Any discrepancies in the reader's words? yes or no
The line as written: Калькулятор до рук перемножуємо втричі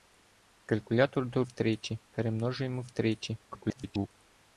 yes